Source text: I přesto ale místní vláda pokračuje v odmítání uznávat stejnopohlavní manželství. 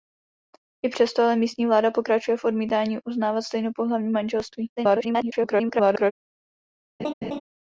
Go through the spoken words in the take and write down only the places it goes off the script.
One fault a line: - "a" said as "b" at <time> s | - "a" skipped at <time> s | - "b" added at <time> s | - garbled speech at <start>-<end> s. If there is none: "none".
- garbled speech at 4.8-6.1 s